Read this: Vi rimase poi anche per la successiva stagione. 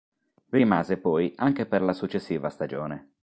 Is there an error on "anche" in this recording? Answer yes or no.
no